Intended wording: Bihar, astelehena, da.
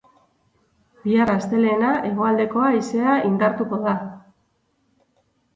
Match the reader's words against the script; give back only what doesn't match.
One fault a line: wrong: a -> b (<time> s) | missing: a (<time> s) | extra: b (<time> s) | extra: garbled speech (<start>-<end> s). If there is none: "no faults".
extra: hegoaldeko haizea indartuko (2.1 s)